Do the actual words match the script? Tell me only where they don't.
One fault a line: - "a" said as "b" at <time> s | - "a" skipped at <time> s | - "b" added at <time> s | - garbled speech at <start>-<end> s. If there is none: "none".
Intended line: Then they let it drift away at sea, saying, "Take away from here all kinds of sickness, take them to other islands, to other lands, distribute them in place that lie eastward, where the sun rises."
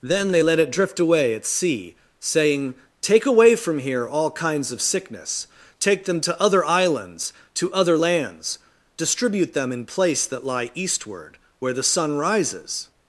none